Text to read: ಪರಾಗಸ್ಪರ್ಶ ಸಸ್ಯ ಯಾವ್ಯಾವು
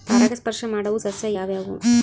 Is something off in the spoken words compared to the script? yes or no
yes